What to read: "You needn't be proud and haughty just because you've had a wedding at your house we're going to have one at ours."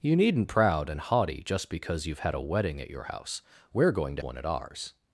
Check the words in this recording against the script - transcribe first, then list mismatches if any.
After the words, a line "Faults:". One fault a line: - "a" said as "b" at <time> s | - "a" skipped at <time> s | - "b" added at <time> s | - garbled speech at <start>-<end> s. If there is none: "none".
"You needn't proud and haughty just because you've had a wedding at your house we're going to one at ours."
Faults:
- "be" skipped at 0.5 s
- "have" skipped at 4.2 s